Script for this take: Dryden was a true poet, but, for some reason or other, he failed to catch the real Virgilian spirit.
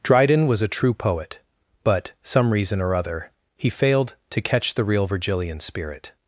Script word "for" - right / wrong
wrong